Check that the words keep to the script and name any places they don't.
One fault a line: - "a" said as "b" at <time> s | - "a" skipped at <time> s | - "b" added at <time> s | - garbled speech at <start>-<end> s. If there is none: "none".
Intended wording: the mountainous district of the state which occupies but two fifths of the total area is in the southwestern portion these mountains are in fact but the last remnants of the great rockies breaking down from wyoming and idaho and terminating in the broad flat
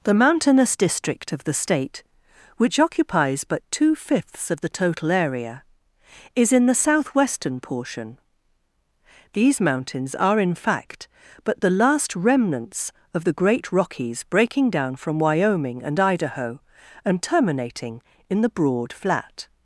none